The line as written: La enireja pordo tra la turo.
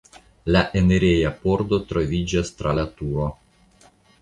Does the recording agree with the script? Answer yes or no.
no